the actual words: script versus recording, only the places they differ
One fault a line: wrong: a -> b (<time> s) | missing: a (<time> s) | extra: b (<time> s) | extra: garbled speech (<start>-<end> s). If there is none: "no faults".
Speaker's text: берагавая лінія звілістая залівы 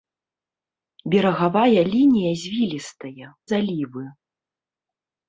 no faults